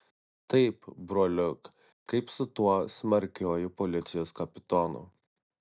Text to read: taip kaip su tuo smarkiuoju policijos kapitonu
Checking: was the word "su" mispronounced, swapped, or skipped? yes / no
no